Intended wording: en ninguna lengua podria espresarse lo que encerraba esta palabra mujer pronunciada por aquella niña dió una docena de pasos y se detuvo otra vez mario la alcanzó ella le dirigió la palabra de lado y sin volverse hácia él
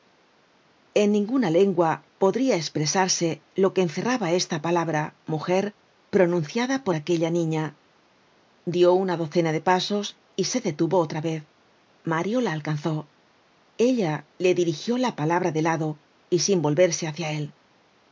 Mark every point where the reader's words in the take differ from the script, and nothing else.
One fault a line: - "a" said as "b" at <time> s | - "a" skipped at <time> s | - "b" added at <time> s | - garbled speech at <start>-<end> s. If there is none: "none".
none